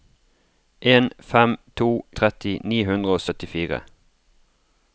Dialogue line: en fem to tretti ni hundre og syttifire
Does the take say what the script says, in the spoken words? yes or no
yes